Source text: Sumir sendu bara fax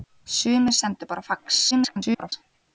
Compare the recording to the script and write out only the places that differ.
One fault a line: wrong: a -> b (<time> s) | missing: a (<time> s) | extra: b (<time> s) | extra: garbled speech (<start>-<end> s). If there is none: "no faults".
extra: garbled speech (1.7-2.3 s)